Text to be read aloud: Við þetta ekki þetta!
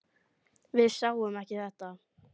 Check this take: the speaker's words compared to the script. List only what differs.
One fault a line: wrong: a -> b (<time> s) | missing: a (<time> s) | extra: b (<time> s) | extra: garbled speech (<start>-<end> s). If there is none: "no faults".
wrong: þetta -> sáum (0.9 s)